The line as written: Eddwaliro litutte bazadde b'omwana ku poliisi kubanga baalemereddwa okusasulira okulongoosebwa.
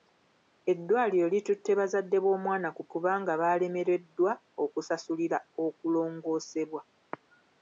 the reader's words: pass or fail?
fail